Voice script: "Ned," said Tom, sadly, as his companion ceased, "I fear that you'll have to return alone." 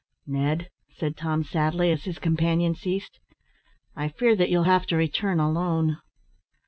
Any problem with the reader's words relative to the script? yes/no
no